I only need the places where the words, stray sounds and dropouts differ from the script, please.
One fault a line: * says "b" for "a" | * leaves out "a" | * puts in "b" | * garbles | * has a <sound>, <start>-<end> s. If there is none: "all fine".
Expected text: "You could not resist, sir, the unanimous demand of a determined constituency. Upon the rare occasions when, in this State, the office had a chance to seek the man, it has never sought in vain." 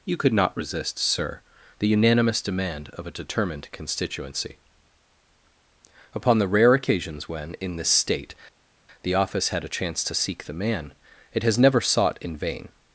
all fine